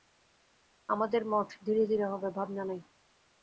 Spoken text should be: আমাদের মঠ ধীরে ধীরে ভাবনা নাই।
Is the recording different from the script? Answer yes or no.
yes